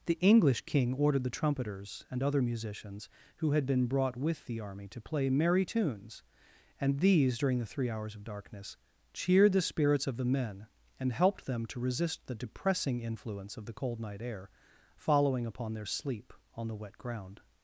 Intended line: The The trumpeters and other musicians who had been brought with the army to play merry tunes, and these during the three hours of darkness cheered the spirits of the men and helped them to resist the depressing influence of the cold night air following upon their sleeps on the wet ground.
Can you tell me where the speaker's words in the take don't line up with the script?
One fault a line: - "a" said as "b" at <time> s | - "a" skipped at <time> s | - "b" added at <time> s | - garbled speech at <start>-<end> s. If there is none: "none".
- "English king ordered" added at 0.2 s
- "sleeps" said as "sleep" at 15.9 s